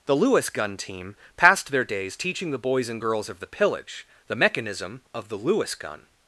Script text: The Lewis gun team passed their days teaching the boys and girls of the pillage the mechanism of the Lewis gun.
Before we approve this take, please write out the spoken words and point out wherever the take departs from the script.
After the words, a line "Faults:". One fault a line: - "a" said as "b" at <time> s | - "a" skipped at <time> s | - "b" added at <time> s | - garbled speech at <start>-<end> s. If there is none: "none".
The Lewis gun team passed their days teaching the boys and girls of the pillage the mechanism of the Lewis gun.
Faults:
none